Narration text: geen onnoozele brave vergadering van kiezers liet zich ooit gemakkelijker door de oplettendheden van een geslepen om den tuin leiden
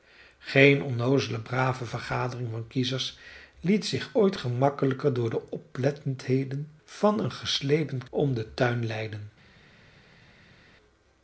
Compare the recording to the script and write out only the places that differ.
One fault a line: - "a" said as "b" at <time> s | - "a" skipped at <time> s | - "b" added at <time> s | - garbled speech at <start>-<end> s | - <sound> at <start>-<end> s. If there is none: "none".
none